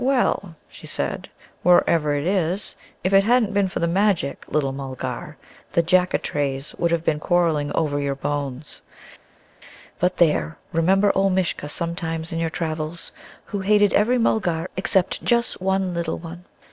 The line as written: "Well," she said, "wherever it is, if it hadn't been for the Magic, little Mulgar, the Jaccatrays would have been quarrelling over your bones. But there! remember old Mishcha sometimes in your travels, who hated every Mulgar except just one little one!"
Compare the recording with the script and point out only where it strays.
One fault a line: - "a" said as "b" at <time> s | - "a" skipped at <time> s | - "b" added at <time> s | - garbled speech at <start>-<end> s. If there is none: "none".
none